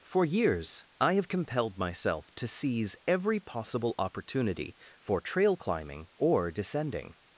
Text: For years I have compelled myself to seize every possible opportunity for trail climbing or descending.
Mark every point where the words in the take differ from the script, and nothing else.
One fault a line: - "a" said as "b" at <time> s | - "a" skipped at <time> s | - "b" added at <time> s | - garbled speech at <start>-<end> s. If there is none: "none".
none